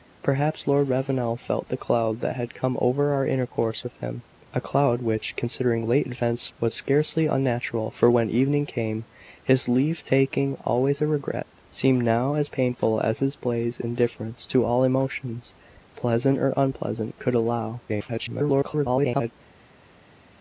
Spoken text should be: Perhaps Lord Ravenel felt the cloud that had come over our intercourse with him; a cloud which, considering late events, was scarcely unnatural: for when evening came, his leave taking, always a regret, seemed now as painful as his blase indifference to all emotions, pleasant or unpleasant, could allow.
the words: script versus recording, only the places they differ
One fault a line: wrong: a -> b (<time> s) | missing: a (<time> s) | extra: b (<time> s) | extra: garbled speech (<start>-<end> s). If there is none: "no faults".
extra: garbled speech (17.9-19.3 s)